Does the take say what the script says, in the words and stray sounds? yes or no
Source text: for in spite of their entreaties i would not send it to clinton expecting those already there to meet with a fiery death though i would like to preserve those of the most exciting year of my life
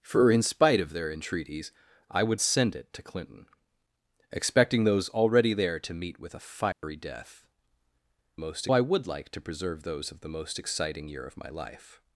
no